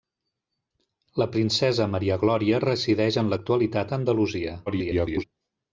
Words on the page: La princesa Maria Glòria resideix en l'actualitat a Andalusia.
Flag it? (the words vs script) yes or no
yes